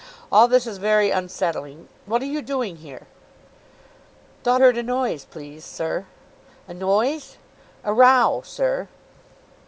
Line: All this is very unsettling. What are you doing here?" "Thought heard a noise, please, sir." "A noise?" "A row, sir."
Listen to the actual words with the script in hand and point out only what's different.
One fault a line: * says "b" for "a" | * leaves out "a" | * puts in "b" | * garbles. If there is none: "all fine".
all fine